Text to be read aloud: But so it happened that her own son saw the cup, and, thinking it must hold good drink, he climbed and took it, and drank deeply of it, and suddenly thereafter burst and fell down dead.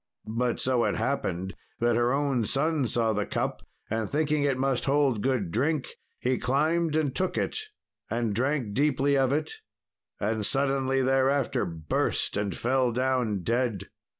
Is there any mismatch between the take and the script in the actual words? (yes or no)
no